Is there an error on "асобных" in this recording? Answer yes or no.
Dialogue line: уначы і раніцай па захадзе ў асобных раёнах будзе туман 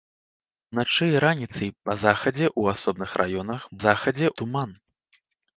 no